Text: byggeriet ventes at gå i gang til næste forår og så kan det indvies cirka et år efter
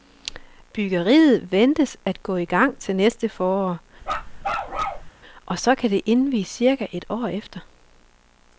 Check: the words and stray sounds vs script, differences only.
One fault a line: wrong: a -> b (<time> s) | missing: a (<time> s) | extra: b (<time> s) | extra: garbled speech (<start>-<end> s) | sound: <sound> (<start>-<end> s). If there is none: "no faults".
sound: bark (4.0-5.1 s)